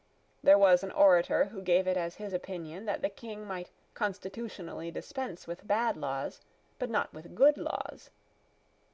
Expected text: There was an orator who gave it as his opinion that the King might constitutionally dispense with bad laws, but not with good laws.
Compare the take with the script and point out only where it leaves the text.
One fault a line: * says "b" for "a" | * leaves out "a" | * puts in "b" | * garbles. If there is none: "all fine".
all fine